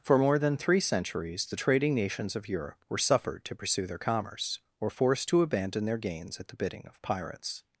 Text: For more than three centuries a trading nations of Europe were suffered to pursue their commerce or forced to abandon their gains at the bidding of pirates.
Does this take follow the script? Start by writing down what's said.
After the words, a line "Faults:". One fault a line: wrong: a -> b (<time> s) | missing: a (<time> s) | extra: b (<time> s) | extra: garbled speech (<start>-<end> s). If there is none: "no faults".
For more than three centuries the trading nations of Europe were suffered to pursue their commerce or forced to abandon their gains at the bidding of pirates.
Faults:
wrong: a -> the (1.4 s)